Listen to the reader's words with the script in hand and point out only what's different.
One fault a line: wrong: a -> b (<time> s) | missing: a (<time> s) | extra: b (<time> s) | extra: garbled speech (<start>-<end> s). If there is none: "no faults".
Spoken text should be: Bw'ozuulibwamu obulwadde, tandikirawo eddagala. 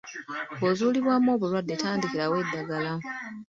no faults